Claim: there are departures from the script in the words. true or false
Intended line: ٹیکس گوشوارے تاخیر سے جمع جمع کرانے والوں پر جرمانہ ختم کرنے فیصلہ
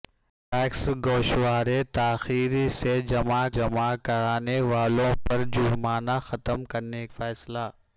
false